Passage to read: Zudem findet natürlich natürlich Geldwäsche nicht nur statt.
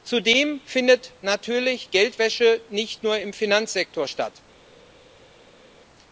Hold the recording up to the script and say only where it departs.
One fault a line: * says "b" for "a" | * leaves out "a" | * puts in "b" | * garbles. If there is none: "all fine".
* leaves out "natürlich"
* puts in "im Finanzsektor"